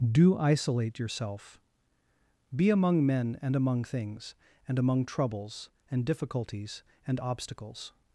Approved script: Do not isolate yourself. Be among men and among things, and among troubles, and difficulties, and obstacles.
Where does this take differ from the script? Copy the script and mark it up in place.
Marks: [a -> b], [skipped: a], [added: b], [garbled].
Do [skipped: not] isolate yourself. Be among men and among things, and among troubles, and difficulties, and obstacles.